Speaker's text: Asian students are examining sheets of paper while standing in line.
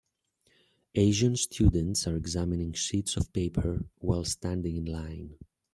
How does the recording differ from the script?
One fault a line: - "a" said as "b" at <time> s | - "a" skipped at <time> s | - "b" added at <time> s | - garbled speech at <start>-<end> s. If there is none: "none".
none